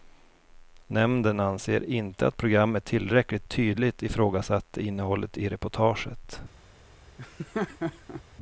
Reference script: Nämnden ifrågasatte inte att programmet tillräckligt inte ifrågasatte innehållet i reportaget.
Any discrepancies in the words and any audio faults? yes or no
yes